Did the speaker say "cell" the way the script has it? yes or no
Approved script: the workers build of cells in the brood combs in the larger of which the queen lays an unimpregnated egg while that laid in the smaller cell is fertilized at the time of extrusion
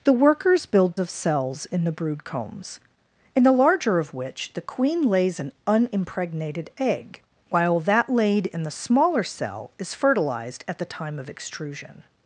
yes